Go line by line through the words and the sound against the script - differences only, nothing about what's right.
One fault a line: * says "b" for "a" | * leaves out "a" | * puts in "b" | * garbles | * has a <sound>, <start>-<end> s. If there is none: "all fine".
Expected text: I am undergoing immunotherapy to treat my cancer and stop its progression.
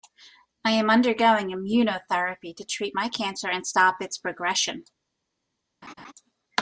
* has a laugh, 5.8-6.1 s